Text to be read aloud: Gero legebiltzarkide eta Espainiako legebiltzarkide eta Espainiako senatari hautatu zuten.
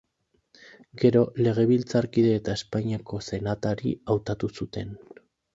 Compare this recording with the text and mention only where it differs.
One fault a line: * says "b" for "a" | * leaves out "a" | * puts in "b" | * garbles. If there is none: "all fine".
* leaves out "legebiltzarkide eta Espainiako"